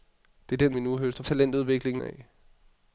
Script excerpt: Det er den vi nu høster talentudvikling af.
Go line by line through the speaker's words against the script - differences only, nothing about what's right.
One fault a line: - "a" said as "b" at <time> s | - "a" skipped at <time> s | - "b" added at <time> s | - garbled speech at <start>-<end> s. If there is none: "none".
none